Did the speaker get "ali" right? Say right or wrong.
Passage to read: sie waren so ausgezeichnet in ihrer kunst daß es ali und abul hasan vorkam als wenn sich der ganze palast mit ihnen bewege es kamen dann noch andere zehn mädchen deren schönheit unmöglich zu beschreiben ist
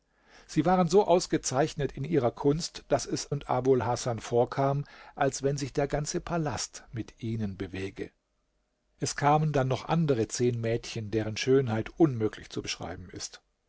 wrong